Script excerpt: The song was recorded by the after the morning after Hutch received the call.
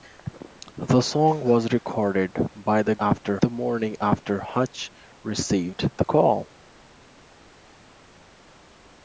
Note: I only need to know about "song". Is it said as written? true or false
true